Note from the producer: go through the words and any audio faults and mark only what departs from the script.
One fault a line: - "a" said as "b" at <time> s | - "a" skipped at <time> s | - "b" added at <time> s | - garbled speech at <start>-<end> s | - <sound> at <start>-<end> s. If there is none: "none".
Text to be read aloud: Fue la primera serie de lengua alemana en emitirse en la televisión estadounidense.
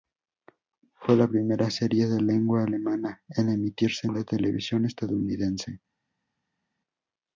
none